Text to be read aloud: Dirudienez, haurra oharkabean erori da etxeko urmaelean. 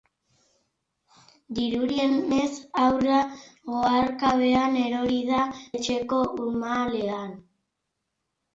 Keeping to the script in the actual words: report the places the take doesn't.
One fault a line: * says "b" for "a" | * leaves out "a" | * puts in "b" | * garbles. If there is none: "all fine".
all fine